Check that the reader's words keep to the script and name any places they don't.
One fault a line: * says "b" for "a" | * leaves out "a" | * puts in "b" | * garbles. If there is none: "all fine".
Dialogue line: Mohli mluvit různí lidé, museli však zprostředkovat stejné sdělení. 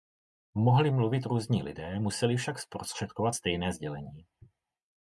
all fine